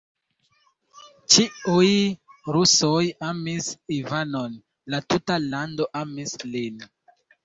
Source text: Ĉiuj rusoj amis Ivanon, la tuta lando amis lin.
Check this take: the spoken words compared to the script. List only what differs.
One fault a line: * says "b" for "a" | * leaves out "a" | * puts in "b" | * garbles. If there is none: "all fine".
all fine